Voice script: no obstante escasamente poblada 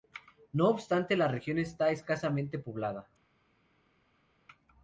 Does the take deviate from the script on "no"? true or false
false